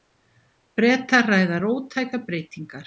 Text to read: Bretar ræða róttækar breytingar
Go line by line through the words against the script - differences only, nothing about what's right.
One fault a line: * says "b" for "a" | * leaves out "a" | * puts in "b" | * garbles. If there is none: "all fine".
all fine